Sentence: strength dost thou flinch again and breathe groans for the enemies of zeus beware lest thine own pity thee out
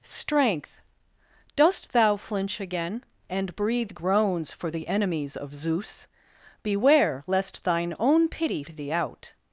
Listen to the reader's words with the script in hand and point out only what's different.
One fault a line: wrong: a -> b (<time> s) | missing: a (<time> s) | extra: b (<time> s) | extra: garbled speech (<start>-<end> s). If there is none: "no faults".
no faults